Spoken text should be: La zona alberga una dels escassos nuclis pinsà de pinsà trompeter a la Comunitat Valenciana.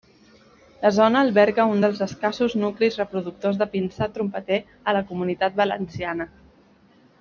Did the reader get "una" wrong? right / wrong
wrong